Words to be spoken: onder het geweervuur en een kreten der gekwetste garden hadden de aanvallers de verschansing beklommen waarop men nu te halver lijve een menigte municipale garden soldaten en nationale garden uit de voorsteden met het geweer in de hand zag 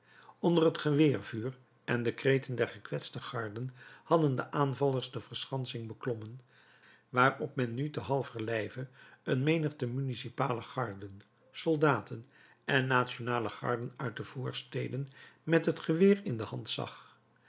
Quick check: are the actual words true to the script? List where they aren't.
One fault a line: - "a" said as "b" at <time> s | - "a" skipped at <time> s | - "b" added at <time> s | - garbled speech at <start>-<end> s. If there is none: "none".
- "een" said as "de" at 2.0 s